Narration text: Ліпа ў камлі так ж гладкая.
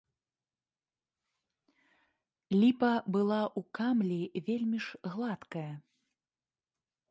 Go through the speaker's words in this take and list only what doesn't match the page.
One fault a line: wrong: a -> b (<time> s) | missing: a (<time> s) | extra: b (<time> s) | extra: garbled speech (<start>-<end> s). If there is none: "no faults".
extra: была (3.2 s)
wrong: так -> вельмі (4.5 s)